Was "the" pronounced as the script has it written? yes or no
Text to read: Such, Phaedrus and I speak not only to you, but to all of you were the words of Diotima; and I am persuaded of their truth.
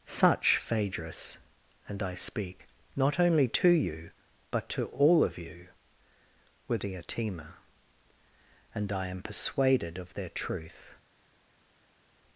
no